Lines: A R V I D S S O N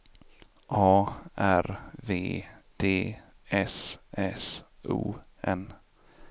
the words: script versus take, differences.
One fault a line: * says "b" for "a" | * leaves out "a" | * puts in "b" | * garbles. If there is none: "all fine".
* leaves out "I"